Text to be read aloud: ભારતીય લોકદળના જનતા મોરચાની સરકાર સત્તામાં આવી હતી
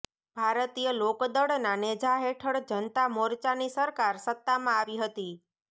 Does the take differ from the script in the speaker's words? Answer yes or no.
yes